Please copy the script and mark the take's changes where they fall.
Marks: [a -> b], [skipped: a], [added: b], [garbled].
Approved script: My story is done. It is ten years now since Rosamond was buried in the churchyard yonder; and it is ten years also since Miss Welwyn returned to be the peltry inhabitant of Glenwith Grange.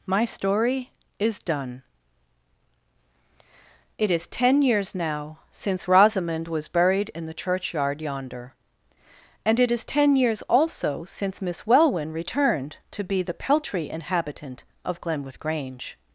My story is done. It is ten years now since Rosamond was buried in the churchyard yonder; and it is ten years also since Miss Welwyn returned to be the peltry inhabitant of Glenwith Grange.